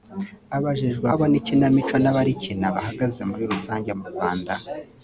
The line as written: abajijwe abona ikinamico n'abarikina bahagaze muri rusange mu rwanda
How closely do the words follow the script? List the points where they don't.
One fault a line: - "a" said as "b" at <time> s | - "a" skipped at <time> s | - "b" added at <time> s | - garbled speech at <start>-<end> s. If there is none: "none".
none